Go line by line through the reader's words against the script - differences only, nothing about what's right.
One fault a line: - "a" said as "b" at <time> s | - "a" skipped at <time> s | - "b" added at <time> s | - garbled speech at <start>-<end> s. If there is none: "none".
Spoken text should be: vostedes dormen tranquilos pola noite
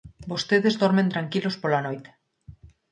none